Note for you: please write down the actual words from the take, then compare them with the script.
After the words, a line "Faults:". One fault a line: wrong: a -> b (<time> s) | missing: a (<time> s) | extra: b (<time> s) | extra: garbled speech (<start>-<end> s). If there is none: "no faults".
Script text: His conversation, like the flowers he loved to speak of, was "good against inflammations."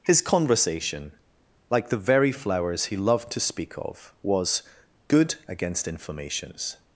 His conversation, like the very flowers he loved to speak of, was "good against inflammations."
Faults:
extra: very (2.0 s)